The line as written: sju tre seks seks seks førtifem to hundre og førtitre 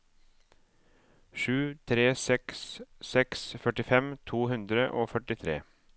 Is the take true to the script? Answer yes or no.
no